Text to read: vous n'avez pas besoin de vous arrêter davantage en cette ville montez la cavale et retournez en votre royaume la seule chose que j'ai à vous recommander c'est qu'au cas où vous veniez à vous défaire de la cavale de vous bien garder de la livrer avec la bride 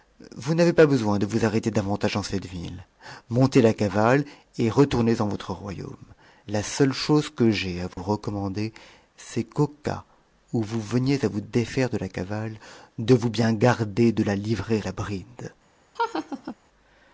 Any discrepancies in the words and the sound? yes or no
yes